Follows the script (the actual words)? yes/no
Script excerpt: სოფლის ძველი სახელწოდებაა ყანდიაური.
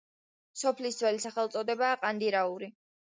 yes